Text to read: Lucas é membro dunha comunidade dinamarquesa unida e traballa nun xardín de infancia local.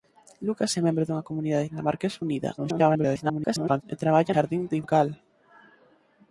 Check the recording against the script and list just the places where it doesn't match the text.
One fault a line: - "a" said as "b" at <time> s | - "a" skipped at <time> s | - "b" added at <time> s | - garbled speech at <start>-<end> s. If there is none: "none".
- garbled speech at 2.6-3.8 s
- "nun" skipped at 4.3 s
- "infancia" skipped at 4.8 s